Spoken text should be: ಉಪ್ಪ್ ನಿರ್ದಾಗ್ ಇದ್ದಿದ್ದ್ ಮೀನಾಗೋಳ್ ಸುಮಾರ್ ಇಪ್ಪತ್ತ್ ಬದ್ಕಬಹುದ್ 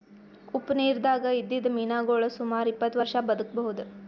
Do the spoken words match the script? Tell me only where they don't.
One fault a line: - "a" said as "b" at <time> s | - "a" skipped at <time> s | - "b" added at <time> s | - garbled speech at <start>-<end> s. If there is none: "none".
- "ವರ್ಷಾ" added at 3.0 s